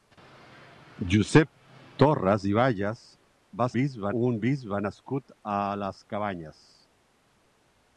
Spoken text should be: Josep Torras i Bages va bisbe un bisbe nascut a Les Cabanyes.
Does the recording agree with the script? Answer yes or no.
yes